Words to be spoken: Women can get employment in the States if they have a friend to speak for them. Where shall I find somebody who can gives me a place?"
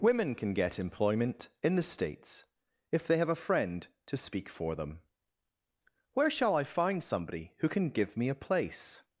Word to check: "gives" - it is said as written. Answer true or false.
false